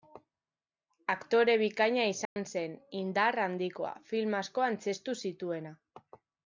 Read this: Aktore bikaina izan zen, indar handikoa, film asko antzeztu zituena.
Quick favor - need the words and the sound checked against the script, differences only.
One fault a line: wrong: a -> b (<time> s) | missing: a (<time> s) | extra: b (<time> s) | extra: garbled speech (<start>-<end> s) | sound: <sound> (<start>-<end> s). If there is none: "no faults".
sound: dropout (2.2-2.4 s)